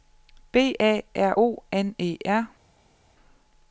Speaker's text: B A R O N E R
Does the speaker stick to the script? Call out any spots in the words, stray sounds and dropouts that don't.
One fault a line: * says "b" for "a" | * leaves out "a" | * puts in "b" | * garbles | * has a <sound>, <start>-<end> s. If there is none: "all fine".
all fine